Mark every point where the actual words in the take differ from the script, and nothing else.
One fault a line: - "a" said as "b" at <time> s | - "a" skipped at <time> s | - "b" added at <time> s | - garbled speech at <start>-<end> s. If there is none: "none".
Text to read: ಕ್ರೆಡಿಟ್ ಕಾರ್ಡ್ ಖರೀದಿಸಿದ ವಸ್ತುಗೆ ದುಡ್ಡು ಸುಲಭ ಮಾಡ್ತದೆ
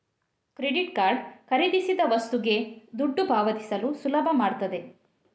- "ಪಾವತಿಸಲು" added at 3.3 s